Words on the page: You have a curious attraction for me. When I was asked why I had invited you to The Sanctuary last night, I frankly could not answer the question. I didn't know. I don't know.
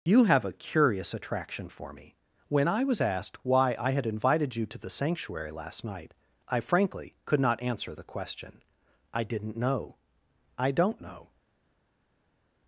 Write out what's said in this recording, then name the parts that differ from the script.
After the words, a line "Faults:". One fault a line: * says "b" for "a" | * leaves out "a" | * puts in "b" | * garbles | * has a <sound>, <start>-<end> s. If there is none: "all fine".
You have a curious attraction for me. When I was asked why I had invited you to The Sanctuary last night, I frankly could not answer the question. I didn't know. I don't know.
Faults:
all fine